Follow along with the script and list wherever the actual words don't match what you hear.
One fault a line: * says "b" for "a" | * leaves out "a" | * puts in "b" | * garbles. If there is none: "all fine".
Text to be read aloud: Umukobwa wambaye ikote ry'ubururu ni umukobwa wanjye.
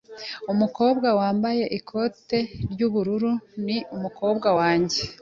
all fine